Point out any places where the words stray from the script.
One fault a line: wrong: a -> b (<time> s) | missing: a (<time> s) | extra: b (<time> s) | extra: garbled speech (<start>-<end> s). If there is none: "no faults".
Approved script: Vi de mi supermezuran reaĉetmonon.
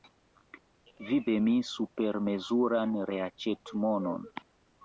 no faults